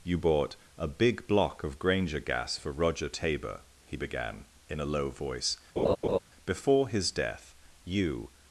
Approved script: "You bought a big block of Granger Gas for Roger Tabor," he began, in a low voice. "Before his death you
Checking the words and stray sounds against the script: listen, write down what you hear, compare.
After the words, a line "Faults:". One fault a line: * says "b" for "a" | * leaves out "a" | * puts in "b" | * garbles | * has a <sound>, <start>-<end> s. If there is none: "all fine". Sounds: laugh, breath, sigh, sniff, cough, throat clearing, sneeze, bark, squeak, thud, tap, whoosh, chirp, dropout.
"You bought a big block of Granger Gas for Roger Tabor," he began, in a low voice. "Before his death you
Faults:
* has a laugh, 5.8-6.2 s